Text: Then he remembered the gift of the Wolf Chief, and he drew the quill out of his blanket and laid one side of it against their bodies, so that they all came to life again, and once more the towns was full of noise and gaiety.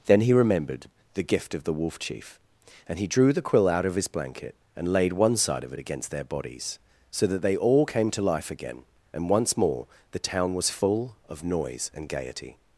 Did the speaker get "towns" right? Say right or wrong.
wrong